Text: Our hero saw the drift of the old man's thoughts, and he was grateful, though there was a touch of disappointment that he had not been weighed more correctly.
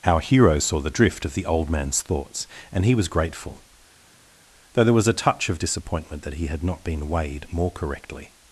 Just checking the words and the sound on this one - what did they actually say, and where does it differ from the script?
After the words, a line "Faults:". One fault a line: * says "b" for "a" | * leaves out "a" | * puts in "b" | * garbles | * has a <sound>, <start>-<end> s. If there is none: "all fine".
Our hero saw the drift of the old man's thoughts, and he was grateful, though there was a touch of disappointment that he had not been weighed more correctly.
Faults:
all fine